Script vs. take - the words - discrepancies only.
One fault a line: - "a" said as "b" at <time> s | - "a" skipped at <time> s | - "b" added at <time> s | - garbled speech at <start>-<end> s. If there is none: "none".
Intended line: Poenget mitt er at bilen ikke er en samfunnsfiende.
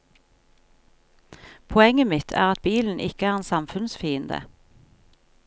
none